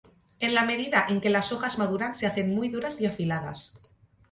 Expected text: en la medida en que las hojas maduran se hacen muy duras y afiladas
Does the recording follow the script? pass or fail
pass